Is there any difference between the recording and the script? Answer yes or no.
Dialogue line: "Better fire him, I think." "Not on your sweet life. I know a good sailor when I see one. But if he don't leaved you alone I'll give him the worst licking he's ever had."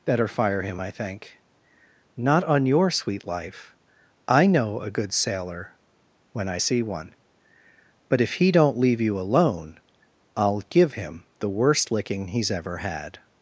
yes